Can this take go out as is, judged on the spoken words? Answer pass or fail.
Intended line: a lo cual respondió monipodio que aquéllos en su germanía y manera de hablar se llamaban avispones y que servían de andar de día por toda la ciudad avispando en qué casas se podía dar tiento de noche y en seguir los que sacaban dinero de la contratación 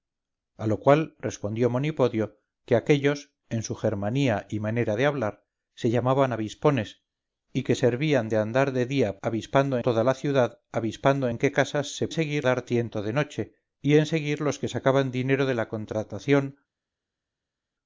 fail